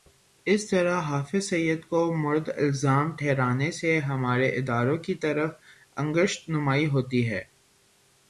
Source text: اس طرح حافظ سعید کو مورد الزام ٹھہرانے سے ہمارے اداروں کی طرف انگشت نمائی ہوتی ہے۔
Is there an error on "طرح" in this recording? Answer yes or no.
no